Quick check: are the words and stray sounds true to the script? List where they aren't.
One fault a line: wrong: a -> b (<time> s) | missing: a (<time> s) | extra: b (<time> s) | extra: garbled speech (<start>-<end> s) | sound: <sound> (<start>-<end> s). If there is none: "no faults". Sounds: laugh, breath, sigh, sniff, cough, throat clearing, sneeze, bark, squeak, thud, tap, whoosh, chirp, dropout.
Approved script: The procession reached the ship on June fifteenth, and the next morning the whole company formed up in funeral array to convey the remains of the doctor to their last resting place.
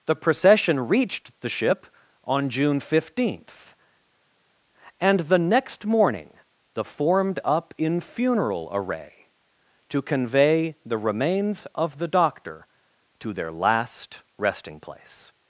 missing: whole company (6.8 s)